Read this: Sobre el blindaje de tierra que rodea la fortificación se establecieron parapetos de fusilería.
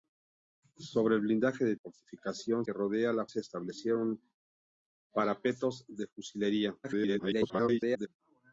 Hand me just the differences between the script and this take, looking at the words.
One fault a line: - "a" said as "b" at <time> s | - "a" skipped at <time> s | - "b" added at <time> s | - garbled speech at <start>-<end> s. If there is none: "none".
- "tierra" said as "fortificación" at 1.7 s
- "fortificación" skipped at 3.3 s
- garbled speech at 6.8-8.1 s